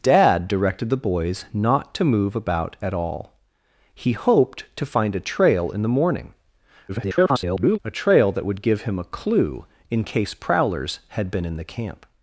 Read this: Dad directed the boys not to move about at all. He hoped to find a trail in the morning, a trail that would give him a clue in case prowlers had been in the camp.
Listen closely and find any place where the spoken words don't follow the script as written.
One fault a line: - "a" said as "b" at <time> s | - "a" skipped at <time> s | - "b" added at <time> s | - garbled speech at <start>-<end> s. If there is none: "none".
- garbled speech at 6.9-7.8 s